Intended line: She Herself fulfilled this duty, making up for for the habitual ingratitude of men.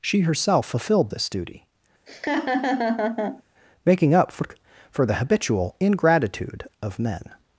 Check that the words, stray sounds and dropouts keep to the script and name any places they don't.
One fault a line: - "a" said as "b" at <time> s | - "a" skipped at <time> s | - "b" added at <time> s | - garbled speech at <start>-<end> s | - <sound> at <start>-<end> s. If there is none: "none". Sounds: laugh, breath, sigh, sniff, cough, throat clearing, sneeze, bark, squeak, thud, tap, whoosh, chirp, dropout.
- laugh at 2.1-3.4 s